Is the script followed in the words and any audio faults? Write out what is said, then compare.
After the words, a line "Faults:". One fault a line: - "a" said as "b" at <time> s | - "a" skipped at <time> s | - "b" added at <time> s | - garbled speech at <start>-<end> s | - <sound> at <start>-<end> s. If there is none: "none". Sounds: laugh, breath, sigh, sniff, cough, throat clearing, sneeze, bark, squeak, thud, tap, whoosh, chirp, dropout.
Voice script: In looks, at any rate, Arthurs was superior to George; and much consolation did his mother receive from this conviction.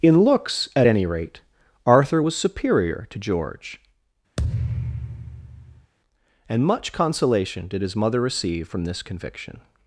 In looks, at any rate, Arthur was superior to George; and much consolation did his mother receive from this conviction.
Faults:
- "Arthurs" said as "Arthur" at 1.8 s
- thud at 4.4-5.9 s